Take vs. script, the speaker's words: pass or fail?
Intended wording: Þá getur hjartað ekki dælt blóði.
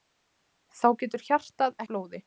fail